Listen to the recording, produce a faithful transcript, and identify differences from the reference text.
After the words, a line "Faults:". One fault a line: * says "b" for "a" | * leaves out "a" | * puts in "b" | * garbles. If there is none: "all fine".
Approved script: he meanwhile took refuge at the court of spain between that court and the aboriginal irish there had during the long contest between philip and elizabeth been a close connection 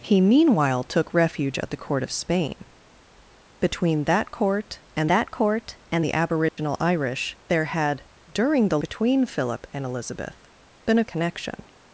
he meanwhile took refuge at the court of spain between that court and that court and the aboriginal irish there had during the between philip and elizabeth been a connection
Faults:
* puts in "that court and"
* leaves out "long contest"
* leaves out "close"